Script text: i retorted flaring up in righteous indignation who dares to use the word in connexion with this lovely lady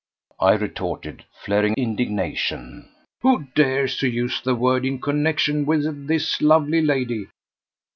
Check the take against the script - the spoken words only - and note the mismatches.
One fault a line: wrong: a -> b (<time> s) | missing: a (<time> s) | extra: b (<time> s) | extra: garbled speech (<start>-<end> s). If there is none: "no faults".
missing: up in righteous (1.8 s)